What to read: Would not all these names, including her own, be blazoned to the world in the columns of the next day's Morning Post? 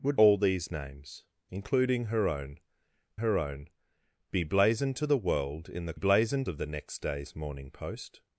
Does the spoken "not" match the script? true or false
false